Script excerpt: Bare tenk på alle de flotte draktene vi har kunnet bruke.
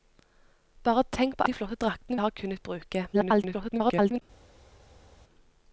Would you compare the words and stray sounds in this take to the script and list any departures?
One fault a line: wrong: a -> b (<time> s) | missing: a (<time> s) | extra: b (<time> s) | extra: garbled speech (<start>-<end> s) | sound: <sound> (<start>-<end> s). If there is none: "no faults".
missing: alle (1.5 s)
missing: vi (2.2 s)
extra: garbled speech (3.1-4.2 s)